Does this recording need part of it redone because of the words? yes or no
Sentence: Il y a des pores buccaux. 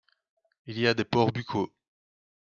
no